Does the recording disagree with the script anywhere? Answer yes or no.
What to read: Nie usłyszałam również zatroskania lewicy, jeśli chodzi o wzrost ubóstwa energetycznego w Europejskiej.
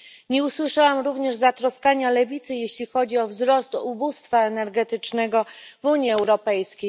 yes